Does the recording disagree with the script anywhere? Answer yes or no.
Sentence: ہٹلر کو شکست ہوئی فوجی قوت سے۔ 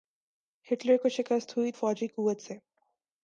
no